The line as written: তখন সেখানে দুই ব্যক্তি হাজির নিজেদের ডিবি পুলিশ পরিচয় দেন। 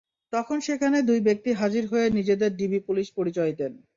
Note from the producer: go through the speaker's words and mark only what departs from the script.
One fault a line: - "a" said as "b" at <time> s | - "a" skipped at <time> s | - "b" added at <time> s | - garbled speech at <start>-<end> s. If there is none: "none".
- "হয়ে" added at 1.9 s